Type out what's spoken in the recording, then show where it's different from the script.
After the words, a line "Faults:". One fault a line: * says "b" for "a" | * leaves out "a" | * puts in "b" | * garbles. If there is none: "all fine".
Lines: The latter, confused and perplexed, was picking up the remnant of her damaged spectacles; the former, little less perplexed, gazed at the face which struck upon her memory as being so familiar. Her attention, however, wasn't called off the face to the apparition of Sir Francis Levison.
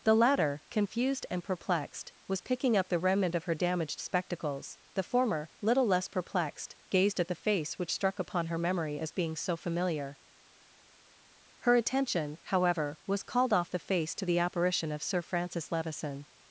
The latter, confused and perplexed, was picking up the remnant of her damaged spectacles; the former, little less perplexed, gazed at the face which struck upon her memory as being so familiar. Her attention, however, was called off the face to the apparition of Sir Francis Levison.
Faults:
* says "was" for "wasn't"